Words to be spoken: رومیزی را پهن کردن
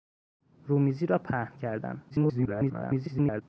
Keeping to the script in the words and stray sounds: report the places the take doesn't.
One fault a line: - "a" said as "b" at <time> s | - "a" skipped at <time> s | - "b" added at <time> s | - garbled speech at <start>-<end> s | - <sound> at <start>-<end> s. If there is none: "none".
- garbled speech at 2.1-3.4 s